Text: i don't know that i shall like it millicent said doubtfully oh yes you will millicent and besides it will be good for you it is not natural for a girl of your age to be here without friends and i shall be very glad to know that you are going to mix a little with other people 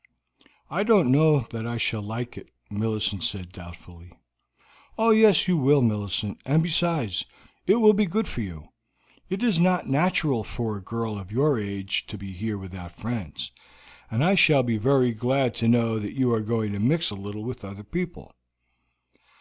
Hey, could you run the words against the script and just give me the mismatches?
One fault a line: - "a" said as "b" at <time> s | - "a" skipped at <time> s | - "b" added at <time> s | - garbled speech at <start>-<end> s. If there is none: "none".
none